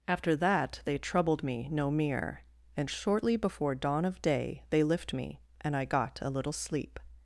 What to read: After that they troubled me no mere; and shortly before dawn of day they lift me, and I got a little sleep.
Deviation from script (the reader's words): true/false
false